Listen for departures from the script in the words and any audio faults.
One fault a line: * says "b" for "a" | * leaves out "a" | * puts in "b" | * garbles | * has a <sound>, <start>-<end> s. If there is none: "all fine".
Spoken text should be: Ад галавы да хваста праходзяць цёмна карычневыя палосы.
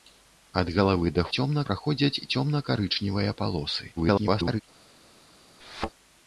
* says "цёмна" for "хваста"
* garbles
* has a thud, 5.6-5.9 s